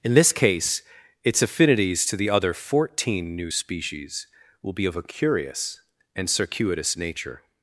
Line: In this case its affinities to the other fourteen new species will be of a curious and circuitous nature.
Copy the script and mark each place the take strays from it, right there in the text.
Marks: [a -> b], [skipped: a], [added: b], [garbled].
In this case its affinities to the other fourteen new species will be of a curious and circuitous nature.